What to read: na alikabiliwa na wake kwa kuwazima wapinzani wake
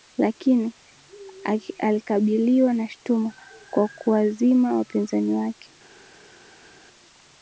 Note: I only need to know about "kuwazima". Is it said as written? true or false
true